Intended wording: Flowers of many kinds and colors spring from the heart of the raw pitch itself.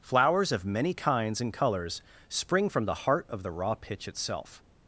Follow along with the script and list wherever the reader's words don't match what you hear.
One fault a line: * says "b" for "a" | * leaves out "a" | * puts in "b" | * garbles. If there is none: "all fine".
all fine